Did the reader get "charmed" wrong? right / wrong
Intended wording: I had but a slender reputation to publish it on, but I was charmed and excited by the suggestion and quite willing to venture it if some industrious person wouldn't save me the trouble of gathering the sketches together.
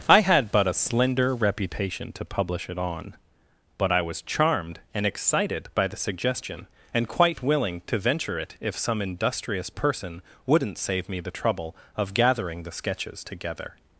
right